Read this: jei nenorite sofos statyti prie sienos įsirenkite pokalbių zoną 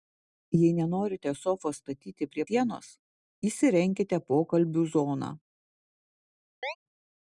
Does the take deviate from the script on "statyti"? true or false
false